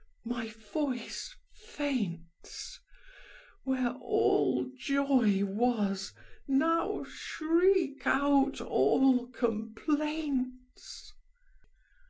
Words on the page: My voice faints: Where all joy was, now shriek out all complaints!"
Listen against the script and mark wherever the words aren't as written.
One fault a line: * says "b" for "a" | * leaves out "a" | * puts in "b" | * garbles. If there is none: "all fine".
all fine